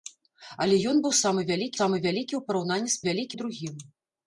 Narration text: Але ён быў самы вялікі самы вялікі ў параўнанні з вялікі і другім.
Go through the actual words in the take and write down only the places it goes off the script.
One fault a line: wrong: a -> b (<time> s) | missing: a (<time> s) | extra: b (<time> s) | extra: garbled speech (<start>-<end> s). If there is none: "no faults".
no faults